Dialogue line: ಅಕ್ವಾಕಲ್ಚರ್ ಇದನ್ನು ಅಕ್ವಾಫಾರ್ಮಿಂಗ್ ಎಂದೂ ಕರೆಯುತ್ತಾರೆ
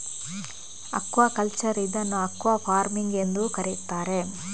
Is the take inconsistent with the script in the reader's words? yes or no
no